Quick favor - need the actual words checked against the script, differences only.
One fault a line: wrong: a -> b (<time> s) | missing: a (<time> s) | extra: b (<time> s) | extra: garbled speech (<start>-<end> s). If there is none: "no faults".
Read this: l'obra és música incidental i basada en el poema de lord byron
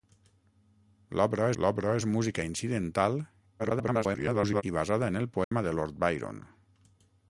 extra: l'obra (1.6 s)
extra: garbled speech (3.6-4.6 s)